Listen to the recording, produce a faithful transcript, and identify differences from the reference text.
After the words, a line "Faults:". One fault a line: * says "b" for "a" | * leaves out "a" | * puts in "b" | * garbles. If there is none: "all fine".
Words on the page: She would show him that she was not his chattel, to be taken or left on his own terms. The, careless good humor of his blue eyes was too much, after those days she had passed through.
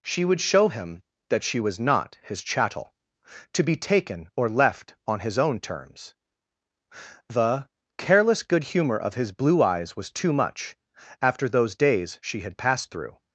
She would show him that she was not his chattel, to be taken or left on his own terms. The, careless good humor of his blue eyes was too much, after those days she had passed through.
Faults:
all fine